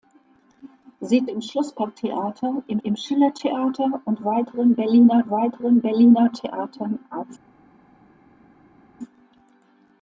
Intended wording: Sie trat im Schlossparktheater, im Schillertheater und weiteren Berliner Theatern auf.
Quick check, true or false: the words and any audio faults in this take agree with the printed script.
false